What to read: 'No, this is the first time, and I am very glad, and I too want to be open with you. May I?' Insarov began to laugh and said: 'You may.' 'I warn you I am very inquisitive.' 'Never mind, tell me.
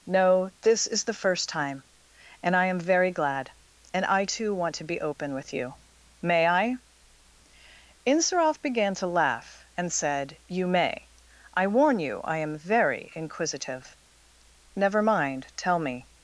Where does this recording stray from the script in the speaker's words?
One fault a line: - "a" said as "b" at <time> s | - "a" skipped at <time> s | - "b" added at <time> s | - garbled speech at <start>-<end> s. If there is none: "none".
none